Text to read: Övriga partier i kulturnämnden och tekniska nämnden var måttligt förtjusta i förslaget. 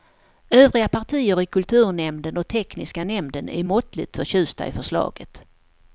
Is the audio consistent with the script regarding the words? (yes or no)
no